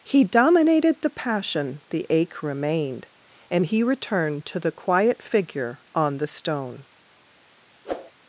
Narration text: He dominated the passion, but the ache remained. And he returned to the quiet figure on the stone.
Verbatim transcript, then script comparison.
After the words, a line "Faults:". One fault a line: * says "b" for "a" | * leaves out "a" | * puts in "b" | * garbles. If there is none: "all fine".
He dominated the passion, the ache remained. And he returned to the quiet figure on the stone.
Faults:
* leaves out "but"